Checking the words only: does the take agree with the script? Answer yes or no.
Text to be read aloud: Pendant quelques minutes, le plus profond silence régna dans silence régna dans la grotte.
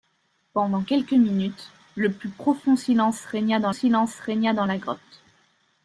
yes